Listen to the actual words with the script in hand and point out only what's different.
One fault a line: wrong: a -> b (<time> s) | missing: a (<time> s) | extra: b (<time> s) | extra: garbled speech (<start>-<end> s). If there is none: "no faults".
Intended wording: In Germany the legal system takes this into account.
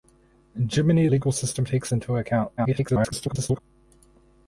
missing: the (1.1 s)
missing: this (1.9 s)
extra: garbled speech (2.6-3.6 s)